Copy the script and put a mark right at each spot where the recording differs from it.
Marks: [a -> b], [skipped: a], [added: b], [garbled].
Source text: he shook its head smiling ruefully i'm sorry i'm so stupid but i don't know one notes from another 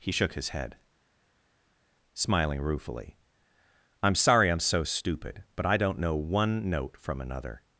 he shook [its -> his] head smiling ruefully i'm sorry i'm so stupid but i don't know one [notes -> note] from another